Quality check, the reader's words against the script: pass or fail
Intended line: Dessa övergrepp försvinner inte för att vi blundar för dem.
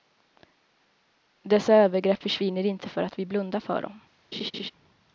pass